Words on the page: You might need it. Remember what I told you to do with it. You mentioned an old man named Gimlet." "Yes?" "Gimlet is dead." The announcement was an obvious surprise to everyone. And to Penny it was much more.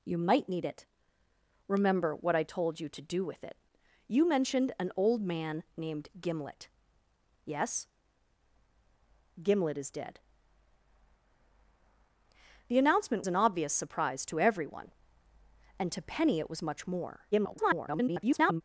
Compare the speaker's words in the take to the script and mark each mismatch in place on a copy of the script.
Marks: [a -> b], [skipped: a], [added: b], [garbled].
You might need it. Remember what I told you to do with it. You mentioned an old man named Gimlet." "Yes?" "Gimlet is dead." The announcement [skipped: was] an obvious surprise to everyone. And to Penny it was much more. [garbled]